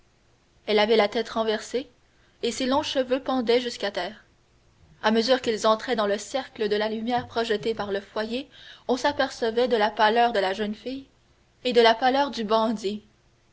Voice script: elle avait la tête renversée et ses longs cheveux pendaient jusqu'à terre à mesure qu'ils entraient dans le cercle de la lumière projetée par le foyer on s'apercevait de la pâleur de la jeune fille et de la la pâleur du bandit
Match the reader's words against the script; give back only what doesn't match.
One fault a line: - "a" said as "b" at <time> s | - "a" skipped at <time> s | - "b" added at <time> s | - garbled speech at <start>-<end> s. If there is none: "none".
- "la" skipped at 11.9 s